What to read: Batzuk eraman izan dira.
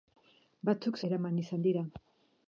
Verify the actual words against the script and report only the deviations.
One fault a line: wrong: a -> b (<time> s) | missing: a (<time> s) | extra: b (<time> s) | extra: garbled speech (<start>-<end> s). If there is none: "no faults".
no faults